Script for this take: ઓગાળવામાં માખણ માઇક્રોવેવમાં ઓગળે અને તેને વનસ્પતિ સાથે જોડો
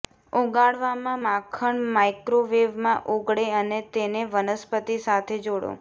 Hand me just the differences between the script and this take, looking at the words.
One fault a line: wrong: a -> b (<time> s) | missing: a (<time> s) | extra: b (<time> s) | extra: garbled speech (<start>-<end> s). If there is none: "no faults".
no faults